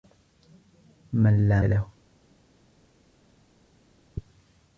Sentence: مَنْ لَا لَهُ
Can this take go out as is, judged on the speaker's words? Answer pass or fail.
pass